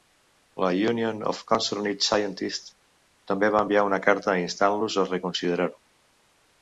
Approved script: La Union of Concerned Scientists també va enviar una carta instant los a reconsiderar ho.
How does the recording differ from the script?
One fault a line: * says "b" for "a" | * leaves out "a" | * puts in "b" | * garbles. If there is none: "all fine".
all fine